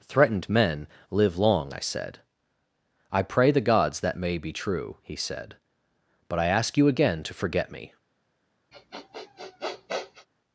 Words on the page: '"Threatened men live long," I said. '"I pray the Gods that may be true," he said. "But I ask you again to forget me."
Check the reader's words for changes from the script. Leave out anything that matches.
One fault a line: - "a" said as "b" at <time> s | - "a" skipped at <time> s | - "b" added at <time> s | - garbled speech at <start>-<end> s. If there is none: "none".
none